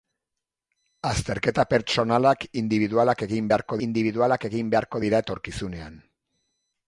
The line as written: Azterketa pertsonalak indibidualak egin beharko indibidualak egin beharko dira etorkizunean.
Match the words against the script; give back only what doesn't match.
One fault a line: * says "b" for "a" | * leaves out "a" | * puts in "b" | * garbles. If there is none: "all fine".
all fine